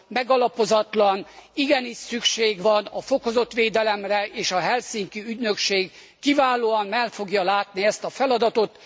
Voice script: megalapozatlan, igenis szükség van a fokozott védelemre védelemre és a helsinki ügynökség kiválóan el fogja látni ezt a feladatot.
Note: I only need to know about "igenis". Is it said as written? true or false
true